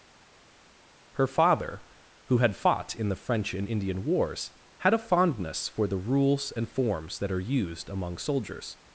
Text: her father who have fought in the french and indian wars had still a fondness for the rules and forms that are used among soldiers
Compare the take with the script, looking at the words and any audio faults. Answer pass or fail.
fail